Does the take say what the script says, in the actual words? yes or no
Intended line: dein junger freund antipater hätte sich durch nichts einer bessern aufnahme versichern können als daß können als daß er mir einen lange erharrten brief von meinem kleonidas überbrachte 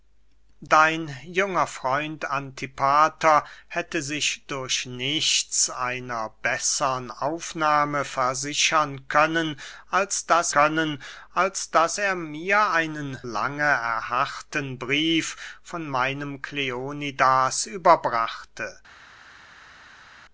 yes